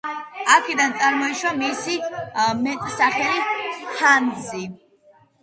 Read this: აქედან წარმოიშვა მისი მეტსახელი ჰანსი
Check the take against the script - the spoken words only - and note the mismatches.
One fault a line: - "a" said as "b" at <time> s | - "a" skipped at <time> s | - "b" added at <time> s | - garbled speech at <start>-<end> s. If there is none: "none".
none